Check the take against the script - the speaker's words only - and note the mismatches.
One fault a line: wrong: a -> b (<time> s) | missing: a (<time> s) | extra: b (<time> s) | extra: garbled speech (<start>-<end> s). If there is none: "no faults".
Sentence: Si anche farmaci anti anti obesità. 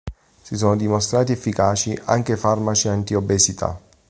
extra: sono dimostrati efficaci (0.6 s)
missing: anti (3.1 s)